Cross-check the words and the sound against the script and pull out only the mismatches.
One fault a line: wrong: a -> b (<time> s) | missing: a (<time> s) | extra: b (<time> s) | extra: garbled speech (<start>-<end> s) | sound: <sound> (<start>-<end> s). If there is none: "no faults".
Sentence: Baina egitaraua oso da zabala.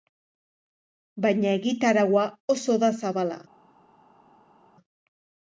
no faults